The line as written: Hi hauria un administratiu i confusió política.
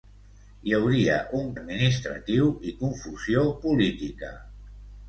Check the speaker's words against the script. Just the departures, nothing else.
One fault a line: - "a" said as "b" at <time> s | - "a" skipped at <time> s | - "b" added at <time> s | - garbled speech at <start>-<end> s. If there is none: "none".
none